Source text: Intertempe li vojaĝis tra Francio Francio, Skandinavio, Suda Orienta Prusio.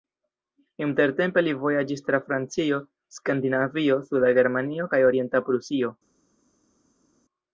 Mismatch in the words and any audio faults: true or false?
true